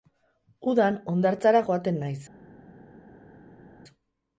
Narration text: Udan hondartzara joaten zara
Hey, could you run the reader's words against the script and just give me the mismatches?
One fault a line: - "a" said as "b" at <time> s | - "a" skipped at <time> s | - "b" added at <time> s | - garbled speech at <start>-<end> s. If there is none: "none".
- "zara" said as "naiz" at 2.0 s